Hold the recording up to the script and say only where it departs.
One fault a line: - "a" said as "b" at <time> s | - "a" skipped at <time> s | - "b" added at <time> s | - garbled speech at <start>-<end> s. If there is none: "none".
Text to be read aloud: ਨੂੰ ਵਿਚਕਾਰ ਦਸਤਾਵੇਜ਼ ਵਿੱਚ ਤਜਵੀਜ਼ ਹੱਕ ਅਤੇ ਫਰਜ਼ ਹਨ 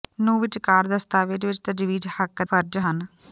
- "ਅਤੇ" skipped at 2.4 s